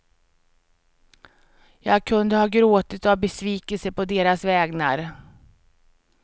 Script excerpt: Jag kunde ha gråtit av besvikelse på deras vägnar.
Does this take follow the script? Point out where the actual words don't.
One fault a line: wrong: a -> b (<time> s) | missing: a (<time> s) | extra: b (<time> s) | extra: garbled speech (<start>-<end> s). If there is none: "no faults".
no faults